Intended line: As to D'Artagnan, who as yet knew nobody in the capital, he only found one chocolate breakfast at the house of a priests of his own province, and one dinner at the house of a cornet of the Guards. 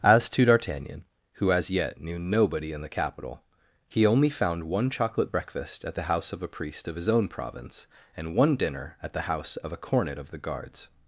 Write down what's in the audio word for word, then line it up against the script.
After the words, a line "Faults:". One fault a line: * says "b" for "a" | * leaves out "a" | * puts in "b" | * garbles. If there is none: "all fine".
As to D'Artagnan, who as yet knew nobody in the capital, he only found one chocolate breakfast at the house of a priest of his own province, and one dinner at the house of a cornet of the Guards.
Faults:
* says "priest" for "priests"